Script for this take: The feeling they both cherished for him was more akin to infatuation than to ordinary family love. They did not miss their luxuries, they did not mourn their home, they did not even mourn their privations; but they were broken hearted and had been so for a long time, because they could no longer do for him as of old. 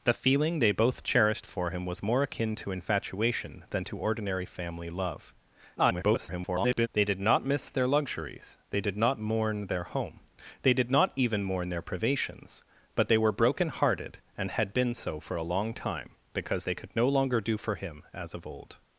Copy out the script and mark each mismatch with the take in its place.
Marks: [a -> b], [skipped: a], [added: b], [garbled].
The feeling they both cherished for him was more akin to infatuation than to ordinary family love. [garbled] They did not miss their luxuries, they did not mourn their home, they did not even mourn their privations; but they were broken hearted and had been so for a long time, because they could no longer do for him as of old.